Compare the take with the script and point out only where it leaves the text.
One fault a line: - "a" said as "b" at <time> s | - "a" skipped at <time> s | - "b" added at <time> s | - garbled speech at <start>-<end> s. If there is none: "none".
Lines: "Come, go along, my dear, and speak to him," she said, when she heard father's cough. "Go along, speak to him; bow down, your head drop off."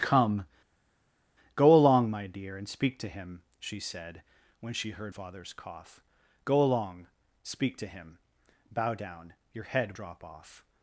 none